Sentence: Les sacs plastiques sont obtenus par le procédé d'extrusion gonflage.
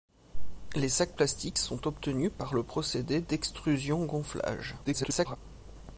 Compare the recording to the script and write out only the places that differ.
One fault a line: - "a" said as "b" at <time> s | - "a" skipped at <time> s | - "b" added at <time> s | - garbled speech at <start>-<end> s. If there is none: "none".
- garbled speech at 4.8-5.4 s